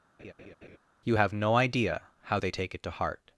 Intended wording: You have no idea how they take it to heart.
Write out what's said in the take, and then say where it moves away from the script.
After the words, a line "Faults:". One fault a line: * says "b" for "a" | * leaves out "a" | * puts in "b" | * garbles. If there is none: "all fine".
You have no idea how they take it to heart.
Faults:
all fine